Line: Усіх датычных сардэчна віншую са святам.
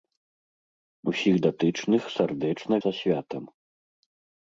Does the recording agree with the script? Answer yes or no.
no